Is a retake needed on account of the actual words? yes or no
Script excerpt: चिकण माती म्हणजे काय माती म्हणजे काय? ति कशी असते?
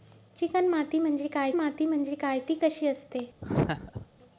no